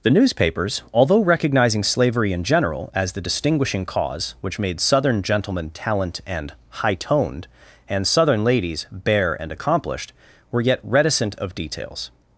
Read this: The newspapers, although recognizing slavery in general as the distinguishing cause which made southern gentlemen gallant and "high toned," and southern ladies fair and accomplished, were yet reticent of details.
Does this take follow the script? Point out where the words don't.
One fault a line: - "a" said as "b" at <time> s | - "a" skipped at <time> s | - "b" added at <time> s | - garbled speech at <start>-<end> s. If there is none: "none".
- "gallant" said as "talent" at 5.7 s
- "fair" said as "bare" at 8.9 s